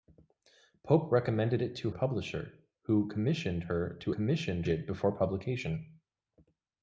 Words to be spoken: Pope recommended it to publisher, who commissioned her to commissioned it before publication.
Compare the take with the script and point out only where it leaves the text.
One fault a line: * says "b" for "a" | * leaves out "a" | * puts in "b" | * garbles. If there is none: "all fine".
all fine